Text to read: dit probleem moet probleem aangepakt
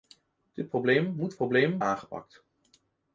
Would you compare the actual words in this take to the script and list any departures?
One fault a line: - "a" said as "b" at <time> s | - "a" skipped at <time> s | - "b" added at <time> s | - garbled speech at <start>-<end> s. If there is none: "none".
none